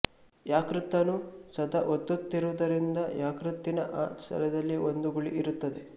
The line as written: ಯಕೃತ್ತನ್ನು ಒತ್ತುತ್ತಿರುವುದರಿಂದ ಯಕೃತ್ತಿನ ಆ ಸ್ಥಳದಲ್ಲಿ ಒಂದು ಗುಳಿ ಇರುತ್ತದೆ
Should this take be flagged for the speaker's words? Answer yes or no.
yes